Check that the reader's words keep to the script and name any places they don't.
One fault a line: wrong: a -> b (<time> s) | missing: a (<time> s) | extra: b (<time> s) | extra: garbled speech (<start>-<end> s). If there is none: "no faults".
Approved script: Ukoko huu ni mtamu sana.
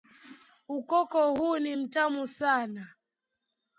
no faults